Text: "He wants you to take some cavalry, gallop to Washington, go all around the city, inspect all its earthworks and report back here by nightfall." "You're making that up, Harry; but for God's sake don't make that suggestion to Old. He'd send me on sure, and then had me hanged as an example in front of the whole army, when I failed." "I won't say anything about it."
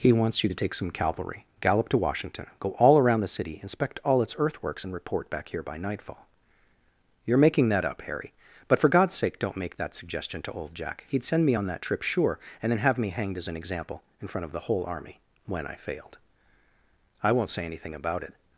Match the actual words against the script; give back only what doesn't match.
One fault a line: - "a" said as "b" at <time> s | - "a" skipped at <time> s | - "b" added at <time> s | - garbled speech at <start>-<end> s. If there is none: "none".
- "Jack" added at 10.7 s
- "that trip" added at 11.7 s
- "had" said as "have" at 12.8 s